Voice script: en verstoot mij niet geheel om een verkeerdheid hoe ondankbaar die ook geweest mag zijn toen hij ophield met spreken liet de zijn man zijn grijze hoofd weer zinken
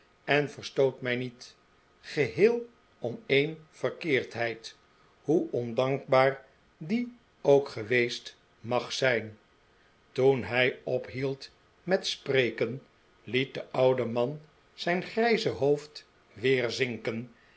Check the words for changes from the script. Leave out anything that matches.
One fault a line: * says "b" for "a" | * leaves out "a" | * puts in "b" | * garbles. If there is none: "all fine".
* says "oude" for "zijn"